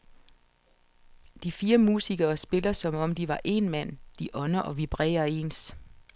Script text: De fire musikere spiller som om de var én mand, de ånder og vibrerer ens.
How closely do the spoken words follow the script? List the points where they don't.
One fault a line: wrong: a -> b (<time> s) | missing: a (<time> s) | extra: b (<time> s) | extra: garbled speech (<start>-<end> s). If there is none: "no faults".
no faults